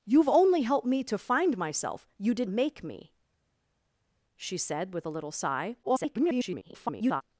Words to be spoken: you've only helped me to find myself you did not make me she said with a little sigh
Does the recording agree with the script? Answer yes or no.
no